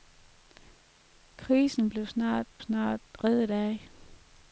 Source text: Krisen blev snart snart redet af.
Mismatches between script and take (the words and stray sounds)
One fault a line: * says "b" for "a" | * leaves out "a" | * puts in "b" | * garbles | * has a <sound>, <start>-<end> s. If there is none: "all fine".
all fine